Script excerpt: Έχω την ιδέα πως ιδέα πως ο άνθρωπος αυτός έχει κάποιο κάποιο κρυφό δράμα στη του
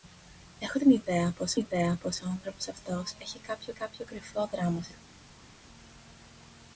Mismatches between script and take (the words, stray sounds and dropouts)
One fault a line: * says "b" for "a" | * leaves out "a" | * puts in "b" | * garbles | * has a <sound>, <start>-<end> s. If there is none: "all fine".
all fine